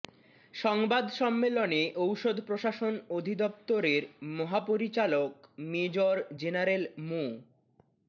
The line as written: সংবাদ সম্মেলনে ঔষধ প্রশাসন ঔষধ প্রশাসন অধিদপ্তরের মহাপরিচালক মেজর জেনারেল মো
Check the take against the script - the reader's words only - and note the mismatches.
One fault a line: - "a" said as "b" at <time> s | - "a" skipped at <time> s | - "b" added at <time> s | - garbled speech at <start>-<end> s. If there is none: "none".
- "ঔষধ প্রশাসন" skipped at 2.9 s